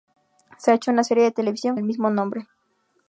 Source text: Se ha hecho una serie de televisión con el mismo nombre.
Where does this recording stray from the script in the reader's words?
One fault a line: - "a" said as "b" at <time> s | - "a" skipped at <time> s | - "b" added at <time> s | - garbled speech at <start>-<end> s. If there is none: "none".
- "con" skipped at 1.8 s